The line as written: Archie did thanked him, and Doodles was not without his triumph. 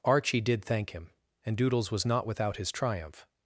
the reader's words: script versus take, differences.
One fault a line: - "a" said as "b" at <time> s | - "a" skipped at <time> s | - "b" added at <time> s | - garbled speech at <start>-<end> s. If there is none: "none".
- "thanked" said as "thank" at 0.7 s